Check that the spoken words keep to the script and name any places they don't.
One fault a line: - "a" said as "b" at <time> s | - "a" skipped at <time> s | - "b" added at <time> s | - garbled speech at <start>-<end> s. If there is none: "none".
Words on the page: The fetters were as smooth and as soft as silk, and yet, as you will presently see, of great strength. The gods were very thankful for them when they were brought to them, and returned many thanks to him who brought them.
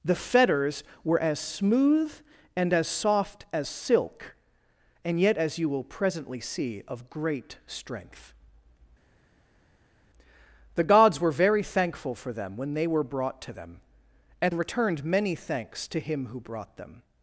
none